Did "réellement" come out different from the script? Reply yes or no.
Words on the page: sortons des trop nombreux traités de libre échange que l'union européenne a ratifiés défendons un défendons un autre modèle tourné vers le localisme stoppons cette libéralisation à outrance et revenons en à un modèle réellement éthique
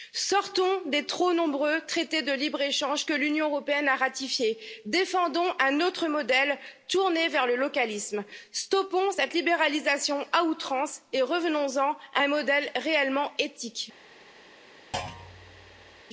no